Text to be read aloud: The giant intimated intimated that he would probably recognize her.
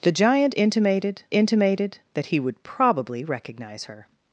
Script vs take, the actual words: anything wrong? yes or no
no